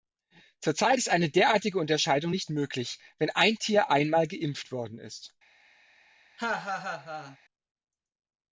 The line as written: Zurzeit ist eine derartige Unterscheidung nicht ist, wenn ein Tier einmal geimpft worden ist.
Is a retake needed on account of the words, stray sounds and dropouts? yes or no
yes